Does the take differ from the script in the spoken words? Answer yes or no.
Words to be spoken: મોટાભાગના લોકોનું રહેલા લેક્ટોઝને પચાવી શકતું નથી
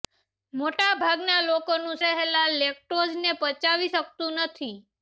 no